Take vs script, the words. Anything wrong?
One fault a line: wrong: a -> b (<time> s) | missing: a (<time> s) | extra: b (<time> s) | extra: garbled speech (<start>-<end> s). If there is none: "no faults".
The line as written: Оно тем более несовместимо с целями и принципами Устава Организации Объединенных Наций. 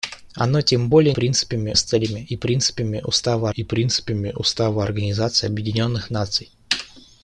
wrong: несовместимо -> принципами (1.1 s)
extra: и принципами Устава (3.5 s)